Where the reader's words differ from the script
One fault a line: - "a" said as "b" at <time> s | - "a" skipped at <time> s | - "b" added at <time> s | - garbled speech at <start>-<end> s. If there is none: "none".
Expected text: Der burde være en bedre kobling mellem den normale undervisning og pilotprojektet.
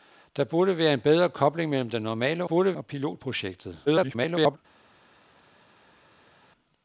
- "undervisning" said as "burde" at 2.4 s
- garbled speech at 3.9-4.6 s